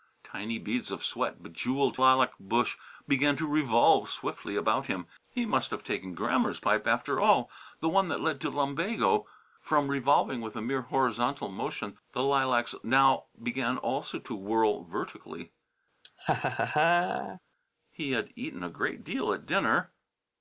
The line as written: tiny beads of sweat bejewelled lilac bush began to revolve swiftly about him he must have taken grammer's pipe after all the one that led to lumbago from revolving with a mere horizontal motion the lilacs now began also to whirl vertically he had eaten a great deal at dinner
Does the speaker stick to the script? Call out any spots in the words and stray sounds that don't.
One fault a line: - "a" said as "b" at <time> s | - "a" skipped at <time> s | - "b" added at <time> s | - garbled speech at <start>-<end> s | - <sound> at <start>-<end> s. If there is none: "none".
- laugh at 16.0-17.4 s